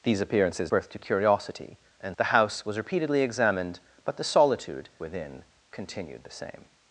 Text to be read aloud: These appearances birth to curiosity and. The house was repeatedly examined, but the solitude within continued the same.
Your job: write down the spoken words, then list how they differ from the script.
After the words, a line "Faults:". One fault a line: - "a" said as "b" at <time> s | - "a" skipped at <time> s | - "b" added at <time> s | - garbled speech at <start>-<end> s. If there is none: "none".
These appearances birth to curiosity and. The house was repeatedly examined, but the solitude within continued the same.
Faults:
none